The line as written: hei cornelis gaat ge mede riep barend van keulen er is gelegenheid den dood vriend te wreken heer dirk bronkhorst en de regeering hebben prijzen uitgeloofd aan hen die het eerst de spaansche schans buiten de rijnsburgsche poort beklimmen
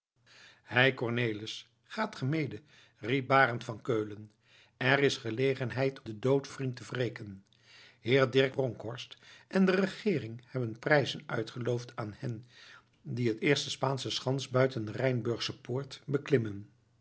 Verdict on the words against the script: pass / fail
pass